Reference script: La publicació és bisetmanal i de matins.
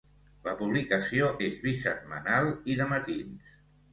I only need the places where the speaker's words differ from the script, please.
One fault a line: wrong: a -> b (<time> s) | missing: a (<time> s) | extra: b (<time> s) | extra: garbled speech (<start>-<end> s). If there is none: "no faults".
no faults